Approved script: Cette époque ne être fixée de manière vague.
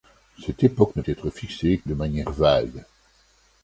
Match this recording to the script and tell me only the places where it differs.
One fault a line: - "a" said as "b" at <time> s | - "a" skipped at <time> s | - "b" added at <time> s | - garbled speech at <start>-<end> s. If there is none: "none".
none